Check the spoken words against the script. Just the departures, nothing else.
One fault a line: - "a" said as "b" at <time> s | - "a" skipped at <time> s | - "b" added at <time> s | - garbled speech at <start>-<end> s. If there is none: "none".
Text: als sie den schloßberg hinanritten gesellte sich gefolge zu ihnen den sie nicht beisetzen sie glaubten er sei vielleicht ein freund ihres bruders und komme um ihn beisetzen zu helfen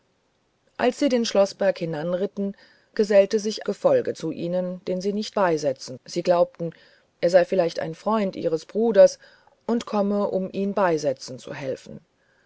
none